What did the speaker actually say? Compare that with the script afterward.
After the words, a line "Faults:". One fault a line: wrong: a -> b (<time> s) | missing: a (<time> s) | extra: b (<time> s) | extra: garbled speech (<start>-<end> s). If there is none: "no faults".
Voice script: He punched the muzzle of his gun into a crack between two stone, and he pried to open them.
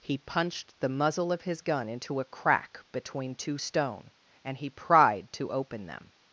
He punched the muzzle of his gun into a crack between two stone, and he pried to open them.
Faults:
no faults